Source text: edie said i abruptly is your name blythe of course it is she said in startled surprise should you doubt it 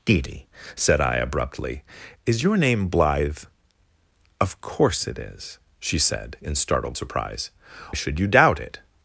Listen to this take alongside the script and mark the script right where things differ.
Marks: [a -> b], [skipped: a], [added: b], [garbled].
edie said i abruptly is your name blythe of course it is she said in startled surprise should you doubt it